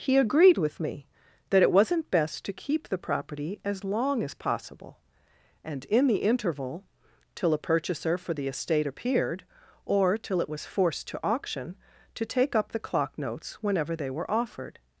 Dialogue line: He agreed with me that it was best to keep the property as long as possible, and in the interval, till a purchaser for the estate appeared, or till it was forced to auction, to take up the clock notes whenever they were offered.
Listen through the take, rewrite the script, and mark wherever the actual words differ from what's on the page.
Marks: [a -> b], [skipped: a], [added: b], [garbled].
He agreed with me that it [was -> wasn't] best to keep the property as long as possible, and in the interval, till a purchaser for the estate appeared, or till it was forced to auction, to take up the clock notes whenever they were offered.